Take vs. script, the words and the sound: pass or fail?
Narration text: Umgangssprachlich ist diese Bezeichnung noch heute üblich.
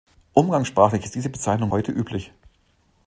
fail